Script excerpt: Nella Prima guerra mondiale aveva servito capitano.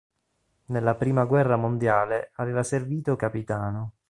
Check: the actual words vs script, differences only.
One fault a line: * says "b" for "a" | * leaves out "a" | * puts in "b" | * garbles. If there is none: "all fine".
all fine